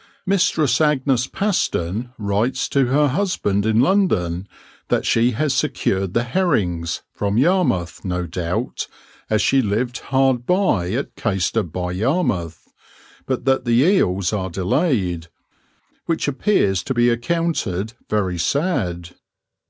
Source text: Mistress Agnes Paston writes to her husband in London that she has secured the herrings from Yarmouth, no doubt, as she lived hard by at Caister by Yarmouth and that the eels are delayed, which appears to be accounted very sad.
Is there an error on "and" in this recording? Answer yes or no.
yes